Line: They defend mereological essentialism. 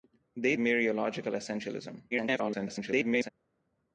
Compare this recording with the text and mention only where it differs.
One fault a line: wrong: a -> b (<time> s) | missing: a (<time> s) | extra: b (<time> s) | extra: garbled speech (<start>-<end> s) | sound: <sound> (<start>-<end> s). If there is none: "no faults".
missing: defend (0.6 s)
extra: garbled speech (2.1-3.3 s)